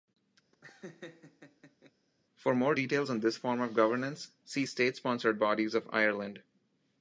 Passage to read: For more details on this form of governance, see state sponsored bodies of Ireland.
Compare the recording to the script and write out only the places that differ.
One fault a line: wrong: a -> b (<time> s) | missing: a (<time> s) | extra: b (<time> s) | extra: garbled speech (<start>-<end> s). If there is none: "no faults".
no faults